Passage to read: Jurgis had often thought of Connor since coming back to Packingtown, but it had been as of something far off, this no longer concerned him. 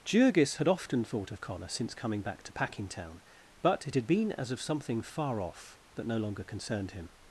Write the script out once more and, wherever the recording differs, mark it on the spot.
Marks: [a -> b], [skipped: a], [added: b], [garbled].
Jurgis had often thought of Connor since coming back to Packingtown, but it had been as of something far off, [this -> that] no longer concerned him.